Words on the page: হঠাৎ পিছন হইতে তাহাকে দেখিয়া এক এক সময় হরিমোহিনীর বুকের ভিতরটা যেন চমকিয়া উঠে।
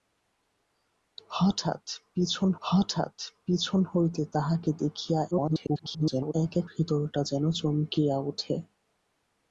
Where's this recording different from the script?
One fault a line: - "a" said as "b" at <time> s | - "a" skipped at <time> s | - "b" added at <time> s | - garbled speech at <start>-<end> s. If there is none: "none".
- "হঠাৎ পিছন" added at 2.6 s
- garbled speech at 5.3-6.3 s
- "সময় হরিমোহিনীর বুকের" skipped at 6.7 s